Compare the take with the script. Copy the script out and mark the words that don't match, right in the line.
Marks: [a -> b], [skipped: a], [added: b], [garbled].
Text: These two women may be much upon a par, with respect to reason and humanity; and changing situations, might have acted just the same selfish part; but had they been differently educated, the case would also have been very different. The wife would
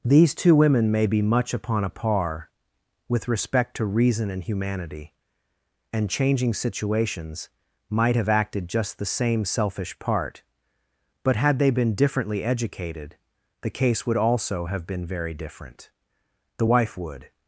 These two women may be much upon a par, with respect to reason and humanity; and changing situations, might have acted just the same selfish part; but had they been differently educated, the case would also have been very different. The wife would